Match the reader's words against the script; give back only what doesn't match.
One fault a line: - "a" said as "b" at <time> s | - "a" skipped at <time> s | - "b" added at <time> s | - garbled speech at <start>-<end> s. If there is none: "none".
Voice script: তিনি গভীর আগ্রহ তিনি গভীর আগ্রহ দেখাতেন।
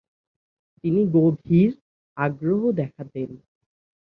- "তিনি গভীর আগ্রহ" skipped at 2.6 s